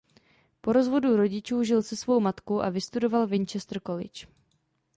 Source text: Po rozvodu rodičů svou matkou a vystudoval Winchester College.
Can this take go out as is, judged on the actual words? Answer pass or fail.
fail